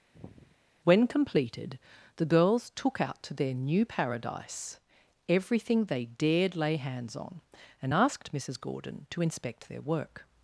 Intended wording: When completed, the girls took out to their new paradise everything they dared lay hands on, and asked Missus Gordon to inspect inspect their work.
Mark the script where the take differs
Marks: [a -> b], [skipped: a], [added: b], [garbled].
When completed, the girls took out to their new paradise everything they dared lay hands on, and asked Missus Gordon to inspect [skipped: inspect] their work.